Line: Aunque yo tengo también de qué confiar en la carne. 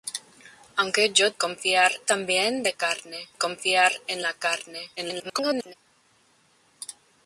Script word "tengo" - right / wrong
wrong